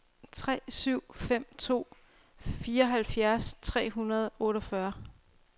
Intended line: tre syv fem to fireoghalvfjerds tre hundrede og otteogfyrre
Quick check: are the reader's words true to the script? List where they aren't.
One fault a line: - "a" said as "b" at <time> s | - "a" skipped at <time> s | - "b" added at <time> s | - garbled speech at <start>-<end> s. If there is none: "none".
none